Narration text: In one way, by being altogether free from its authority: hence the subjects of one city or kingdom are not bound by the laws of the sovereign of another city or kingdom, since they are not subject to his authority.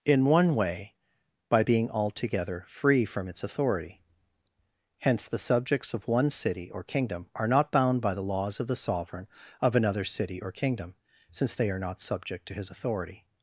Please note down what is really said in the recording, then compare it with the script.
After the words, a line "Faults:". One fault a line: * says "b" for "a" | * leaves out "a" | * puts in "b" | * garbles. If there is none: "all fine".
In one way, by being altogether free from its authority: hence the subjects of one city or kingdom are not bound by the laws of the sovereign of another city or kingdom, since they are not subject to his authority.
Faults:
all fine